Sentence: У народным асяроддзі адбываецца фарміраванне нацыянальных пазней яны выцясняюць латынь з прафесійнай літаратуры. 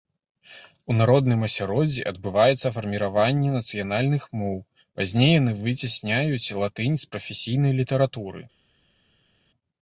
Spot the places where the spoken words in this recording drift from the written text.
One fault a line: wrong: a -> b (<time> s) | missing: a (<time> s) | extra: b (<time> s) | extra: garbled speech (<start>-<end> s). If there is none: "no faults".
extra: моў (4.4 s)